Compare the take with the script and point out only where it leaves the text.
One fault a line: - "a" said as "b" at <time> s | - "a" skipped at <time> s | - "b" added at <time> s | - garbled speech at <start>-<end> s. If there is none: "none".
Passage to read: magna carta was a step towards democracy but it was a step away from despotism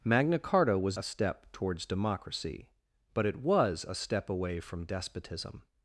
none